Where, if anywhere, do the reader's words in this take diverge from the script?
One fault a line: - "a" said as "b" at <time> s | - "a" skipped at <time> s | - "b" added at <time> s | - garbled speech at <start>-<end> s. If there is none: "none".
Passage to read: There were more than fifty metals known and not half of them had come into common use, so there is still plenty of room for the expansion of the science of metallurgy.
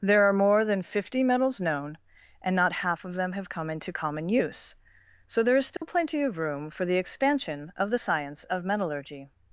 - "were" said as "are" at 0.2 s
- "had" said as "have" at 3.3 s